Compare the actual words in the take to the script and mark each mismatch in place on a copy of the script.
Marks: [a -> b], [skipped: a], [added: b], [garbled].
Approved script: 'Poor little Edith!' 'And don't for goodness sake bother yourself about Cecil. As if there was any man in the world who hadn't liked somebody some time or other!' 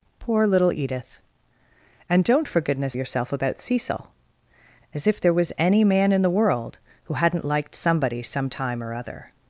'Poor little Edith!' 'And don't for goodness [skipped: sake bother] yourself about Cecil. As if there was any man in the world who hadn't liked somebody some time or other!'